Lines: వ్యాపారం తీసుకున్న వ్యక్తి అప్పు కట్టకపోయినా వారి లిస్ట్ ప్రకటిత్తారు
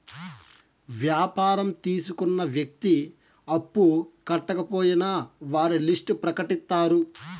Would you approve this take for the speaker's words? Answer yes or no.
yes